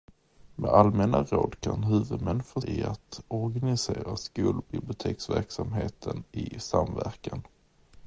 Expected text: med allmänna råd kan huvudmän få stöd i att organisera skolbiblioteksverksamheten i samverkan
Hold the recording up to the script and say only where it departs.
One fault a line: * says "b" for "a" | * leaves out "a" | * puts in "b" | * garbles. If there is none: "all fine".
* leaves out "stöd"